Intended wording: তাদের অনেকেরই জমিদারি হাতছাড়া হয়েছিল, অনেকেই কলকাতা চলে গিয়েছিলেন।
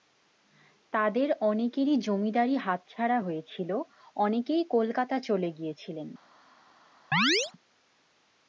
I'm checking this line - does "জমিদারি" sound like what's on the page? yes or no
yes